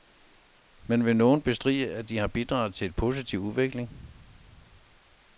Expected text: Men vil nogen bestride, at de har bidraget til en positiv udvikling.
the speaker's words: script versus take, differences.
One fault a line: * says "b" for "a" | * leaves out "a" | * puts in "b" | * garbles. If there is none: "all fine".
all fine